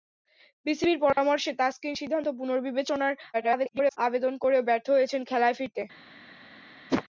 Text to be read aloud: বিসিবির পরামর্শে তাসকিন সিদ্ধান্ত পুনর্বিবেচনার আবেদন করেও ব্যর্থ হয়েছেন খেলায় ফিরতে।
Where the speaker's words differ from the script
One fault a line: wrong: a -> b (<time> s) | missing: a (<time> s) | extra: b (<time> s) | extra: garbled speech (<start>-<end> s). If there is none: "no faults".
extra: garbled speech (3.3-4.0 s)